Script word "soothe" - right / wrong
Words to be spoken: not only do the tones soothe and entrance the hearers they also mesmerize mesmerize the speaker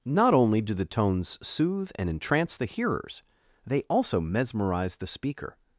right